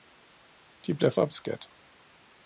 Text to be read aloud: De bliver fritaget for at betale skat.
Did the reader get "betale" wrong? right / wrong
wrong